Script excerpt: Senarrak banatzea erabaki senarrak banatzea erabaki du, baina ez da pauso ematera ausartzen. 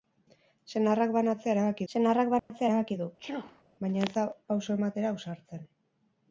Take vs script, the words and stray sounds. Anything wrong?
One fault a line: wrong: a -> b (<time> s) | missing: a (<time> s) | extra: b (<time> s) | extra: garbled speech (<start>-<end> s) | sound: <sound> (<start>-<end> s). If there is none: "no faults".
sound: dropout (2.4-2.5 s)
sound: sneeze (3.2-3.6 s)